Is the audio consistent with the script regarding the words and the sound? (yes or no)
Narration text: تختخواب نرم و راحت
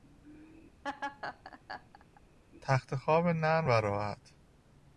no